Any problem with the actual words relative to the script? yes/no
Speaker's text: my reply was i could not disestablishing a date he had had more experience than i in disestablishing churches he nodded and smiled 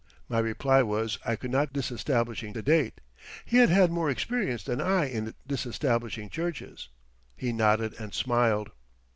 no